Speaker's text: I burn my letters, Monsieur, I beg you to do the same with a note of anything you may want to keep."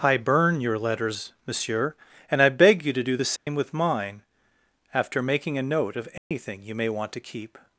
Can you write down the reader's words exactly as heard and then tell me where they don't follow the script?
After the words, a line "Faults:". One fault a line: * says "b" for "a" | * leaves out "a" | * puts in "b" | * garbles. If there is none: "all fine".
I burn your letters, Monsieur, and I beg you to do the same with mine, after making a note of anything you may want to keep."
Faults:
* says "your" for "my"
* puts in "and"
* puts in "mine after making"